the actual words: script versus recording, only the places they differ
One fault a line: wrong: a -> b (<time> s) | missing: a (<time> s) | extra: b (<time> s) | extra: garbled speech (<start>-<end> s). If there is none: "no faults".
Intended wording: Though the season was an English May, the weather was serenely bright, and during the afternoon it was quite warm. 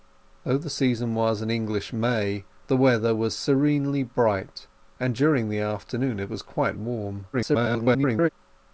extra: garbled speech (7.3-8.3 s)